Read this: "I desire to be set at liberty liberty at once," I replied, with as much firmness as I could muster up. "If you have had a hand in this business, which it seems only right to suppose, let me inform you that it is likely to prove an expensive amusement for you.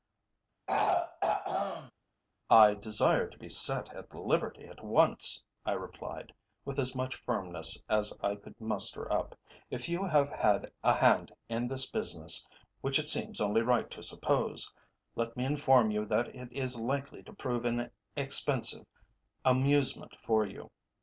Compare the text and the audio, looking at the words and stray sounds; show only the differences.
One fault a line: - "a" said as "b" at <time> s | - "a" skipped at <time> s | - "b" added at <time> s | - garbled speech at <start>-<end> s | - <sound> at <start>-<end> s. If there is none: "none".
- throat clearing at 0.7-1.9 s
- "liberty" skipped at 4.7 s